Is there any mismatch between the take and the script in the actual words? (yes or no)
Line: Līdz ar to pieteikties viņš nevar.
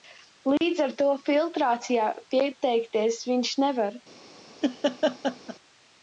yes